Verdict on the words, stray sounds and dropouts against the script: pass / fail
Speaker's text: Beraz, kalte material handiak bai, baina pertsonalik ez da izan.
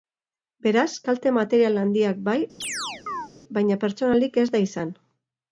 fail